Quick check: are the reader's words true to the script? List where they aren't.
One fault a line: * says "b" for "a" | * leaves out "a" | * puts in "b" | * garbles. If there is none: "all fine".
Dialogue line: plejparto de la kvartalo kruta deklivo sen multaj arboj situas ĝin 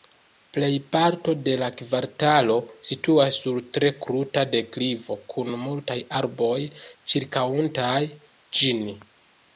* puts in "situas sur tre"
* says "kun" for "sen"
* says "ĉirkaŭantaj" for "situas"